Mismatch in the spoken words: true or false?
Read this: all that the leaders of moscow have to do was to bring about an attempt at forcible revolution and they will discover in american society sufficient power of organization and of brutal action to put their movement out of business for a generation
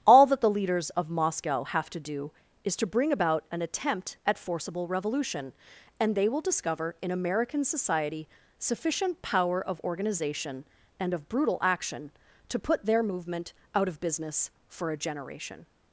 true